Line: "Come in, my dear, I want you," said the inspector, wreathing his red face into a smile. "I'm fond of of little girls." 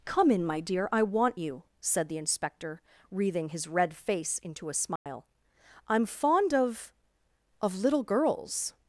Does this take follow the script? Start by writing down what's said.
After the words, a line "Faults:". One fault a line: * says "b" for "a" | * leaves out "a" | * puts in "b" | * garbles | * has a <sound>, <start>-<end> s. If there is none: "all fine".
"Come in, my dear, I want you," said the inspector, wreathing his red face into a smile. "I'm fond of of little girls."
Faults:
* has a dropout, 5.0-5.1 s